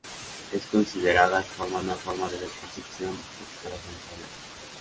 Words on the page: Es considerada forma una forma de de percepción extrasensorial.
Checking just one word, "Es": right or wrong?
right